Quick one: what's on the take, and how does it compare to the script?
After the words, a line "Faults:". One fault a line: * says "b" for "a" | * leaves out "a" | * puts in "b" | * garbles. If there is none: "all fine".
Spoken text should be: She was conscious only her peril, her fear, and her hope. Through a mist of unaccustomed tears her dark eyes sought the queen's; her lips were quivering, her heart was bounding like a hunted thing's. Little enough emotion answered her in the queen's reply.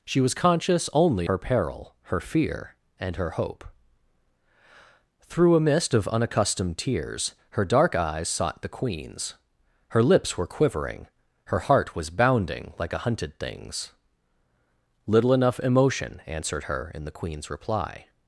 She was conscious only her peril, her fear, and her hope. Through a mist of unaccustomed tears her dark eyes sought the queen's; her lips were quivering, her heart was bounding like a hunted thing's. Little enough emotion answered her in the queen's reply.
Faults:
all fine